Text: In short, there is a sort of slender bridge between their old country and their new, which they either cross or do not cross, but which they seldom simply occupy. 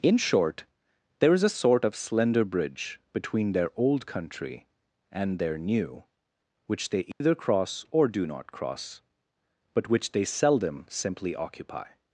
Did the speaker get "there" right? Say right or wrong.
right